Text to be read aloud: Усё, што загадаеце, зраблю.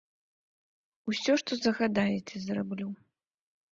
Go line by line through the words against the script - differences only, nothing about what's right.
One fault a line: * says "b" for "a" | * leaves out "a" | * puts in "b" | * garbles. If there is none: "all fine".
all fine